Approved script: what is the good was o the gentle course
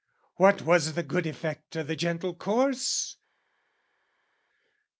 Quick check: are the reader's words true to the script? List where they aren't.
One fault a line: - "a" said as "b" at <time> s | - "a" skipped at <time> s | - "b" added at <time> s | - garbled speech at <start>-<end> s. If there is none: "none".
- "is" said as "was" at 0.6 s
- "was" said as "effect" at 1.3 s